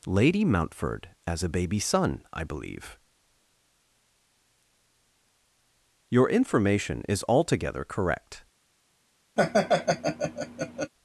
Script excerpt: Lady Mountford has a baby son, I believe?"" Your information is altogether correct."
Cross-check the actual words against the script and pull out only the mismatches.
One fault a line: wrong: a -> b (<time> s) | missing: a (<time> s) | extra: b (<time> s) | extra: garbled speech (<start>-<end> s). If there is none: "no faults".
wrong: has -> as (1.3 s)